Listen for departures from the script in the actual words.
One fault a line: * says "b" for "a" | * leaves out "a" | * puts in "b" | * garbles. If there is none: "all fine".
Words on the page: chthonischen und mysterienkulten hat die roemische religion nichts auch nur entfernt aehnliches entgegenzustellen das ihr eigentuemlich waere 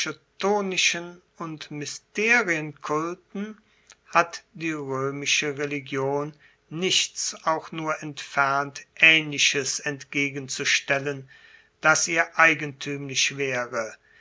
all fine